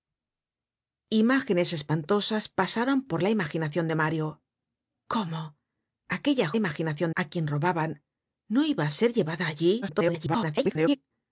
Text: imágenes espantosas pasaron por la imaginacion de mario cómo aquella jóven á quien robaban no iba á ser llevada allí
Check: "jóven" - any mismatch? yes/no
yes